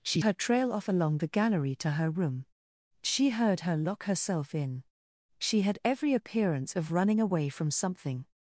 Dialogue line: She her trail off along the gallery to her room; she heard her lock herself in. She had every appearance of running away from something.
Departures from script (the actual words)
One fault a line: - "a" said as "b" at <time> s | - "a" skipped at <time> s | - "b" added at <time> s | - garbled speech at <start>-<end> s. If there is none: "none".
none